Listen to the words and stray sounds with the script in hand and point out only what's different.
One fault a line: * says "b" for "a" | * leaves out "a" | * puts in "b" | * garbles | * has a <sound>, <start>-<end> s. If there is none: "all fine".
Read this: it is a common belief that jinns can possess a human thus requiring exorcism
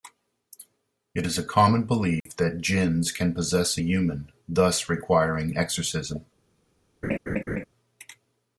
* has a dropout, 2.2-2.3 s
* has a laugh, 7.0-7.7 s